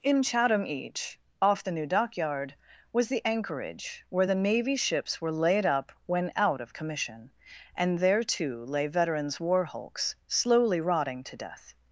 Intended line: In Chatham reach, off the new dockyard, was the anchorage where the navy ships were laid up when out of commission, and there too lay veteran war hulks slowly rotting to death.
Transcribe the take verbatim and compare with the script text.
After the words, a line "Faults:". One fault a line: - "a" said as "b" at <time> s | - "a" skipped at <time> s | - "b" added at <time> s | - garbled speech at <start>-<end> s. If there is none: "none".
In Chatham each, off the new dockyard, was the anchorage where the navy ships were laid up when out of commission, and there too lay veterans war hulks slowly rotting to death.
Faults:
- "reach" said as "each" at 0.7 s
- "veteran" said as "veterans" at 8.9 s